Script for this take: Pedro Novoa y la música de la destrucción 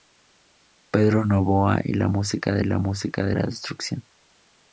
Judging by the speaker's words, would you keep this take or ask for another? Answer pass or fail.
fail